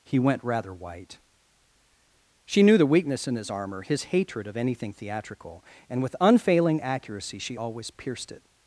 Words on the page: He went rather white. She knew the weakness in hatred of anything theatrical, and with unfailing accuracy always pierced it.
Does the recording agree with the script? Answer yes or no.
no